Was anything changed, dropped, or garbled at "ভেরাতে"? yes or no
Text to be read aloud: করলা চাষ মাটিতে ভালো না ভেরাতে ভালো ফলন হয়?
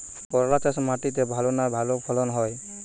yes